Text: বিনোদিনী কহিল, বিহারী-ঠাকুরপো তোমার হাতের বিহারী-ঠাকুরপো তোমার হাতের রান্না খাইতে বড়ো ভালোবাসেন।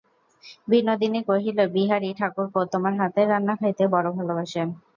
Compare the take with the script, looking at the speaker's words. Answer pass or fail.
fail